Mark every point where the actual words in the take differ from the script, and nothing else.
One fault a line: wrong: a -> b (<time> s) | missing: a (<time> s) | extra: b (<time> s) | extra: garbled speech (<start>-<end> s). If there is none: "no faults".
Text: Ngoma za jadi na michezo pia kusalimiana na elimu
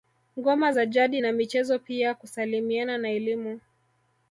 no faults